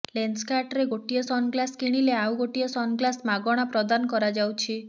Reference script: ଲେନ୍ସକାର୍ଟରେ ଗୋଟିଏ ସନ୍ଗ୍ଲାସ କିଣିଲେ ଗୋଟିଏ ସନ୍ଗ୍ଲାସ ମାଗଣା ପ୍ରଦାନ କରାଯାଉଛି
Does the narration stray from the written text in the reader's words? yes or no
yes